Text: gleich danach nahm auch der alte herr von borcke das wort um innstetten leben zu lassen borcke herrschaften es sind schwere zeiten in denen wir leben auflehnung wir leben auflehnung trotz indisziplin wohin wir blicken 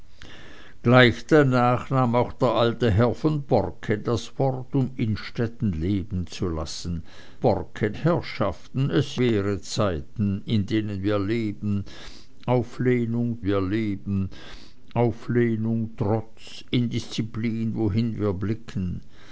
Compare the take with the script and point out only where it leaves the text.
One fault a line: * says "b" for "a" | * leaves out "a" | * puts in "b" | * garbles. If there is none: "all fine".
all fine